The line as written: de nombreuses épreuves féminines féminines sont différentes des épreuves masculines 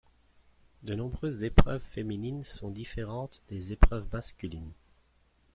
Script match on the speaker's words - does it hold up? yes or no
no